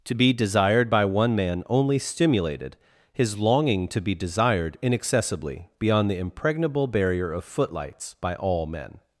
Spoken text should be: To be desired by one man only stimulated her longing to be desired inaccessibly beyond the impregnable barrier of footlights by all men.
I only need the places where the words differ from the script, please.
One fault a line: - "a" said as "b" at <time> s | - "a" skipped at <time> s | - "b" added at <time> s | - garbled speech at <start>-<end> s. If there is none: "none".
- "her" said as "his" at 3.1 s